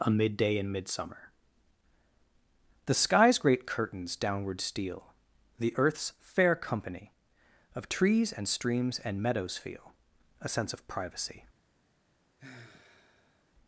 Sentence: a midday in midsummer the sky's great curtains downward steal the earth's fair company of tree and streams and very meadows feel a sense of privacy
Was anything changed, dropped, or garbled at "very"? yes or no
yes